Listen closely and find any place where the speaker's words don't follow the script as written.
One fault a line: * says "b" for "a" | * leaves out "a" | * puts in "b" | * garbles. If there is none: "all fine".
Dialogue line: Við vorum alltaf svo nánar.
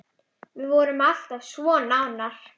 all fine